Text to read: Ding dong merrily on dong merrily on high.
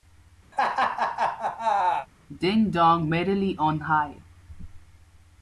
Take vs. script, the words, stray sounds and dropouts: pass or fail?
fail